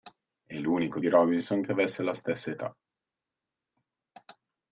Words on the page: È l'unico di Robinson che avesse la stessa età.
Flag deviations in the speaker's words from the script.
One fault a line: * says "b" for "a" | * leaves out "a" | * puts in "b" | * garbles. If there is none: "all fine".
all fine